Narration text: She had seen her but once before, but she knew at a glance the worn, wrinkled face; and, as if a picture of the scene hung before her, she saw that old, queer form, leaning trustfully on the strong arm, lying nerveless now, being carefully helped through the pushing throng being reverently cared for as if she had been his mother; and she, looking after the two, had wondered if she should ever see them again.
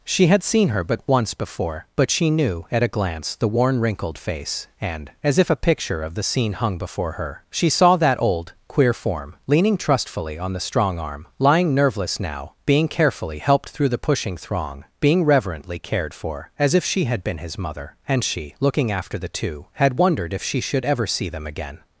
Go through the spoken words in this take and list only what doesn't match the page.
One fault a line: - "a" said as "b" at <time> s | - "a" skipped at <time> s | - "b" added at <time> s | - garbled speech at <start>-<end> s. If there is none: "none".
none